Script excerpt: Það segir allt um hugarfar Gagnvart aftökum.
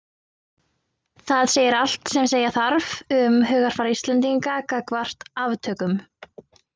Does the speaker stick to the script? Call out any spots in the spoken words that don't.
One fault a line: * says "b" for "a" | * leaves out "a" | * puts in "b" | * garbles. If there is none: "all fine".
* puts in "sem segja þarf"
* puts in "Íslendinga"